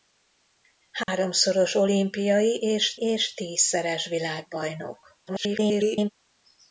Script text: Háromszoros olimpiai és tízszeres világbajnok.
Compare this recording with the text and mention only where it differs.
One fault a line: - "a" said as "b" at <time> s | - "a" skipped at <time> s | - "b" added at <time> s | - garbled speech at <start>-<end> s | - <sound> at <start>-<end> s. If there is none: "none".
- dropout at 1.0-1.1 s
- "és" added at 3.0 s
- garbled speech at 5.3-6.1 s